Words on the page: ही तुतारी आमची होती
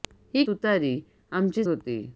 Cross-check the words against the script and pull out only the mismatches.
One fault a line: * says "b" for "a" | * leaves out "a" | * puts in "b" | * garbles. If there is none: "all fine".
all fine